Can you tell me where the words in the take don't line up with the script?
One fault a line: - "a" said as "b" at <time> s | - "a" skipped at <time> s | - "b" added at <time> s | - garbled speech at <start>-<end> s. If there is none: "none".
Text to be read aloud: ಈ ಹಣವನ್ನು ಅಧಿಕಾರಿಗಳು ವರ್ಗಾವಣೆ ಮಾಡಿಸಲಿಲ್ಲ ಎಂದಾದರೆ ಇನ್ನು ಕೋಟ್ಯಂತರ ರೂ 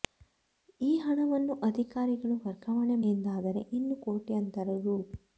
- "ಮಾಡಿಸಲಿಲ್ಲ" skipped at 3.0 s